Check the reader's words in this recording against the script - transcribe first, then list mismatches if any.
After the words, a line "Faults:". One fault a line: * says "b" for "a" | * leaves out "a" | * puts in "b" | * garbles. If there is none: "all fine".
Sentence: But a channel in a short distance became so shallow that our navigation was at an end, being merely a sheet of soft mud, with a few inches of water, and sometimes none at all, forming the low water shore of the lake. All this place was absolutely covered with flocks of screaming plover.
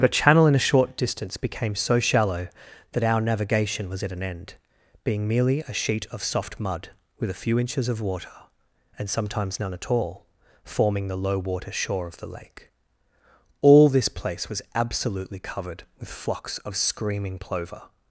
But a channel in a short distance became so shallow that our navigation was at an end, being merely a sheet of soft mud, with a few inches of water, and sometimes none at all, forming the low water shore of the lake. All this place was absolutely covered with flocks of screaming plover.
Faults:
all fine